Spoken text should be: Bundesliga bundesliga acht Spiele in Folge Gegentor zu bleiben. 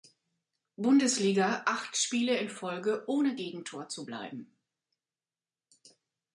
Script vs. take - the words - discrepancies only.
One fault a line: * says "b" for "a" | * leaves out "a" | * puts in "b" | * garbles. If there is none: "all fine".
* leaves out "bundesliga"
* puts in "ohne"